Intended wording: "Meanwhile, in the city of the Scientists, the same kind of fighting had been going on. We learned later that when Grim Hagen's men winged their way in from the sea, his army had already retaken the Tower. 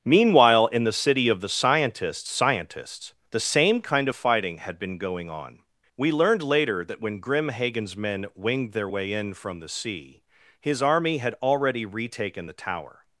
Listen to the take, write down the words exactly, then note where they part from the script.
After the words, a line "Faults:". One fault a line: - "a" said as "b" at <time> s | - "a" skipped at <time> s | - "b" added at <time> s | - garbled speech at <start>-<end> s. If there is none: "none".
"Meanwhile, in the city of the Scientists Scientists, the same kind of fighting had been going on. We learned later that when Grim Hagen's men winged their way in from the sea, his army had already retaken the Tower.
Faults:
- "Scientists" added at 2.3 s